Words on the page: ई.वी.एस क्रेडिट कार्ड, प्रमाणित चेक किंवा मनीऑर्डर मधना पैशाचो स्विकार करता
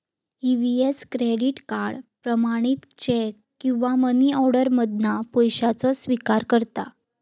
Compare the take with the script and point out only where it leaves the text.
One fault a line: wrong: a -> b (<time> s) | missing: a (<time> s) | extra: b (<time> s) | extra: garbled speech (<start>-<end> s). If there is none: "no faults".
no faults